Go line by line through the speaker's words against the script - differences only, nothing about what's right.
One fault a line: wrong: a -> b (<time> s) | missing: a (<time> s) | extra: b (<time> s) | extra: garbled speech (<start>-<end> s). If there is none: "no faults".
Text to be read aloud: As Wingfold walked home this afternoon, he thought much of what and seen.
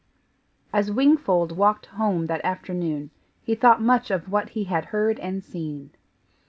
wrong: this -> that (2.3 s)
extra: he had heard (4.5 s)